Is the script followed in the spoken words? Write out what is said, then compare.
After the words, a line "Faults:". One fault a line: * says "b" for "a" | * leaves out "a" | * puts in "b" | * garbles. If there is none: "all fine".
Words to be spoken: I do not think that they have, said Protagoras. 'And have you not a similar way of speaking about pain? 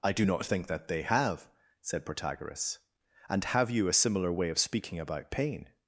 I do not think that they have, said Protagoras. 'And have you a similar way of speaking about pain?
Faults:
* leaves out "not"